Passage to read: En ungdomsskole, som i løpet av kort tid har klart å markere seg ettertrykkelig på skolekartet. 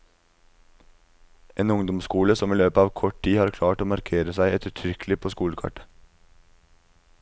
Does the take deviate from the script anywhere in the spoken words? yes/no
no